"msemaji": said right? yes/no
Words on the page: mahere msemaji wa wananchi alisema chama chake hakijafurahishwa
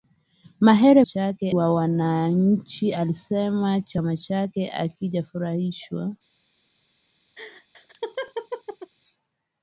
no